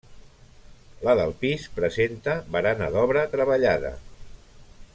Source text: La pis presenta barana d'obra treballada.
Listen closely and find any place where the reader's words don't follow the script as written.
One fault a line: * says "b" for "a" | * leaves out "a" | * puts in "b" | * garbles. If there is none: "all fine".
* puts in "del"